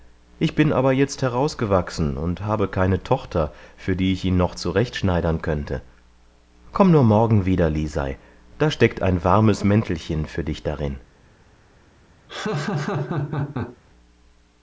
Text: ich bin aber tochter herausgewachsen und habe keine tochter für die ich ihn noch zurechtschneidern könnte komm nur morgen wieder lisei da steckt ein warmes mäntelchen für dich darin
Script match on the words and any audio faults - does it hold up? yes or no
no